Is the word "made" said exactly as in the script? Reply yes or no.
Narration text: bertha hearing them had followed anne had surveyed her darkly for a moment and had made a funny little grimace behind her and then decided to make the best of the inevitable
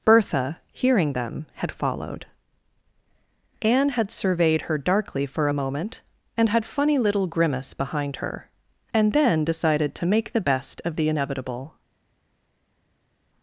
no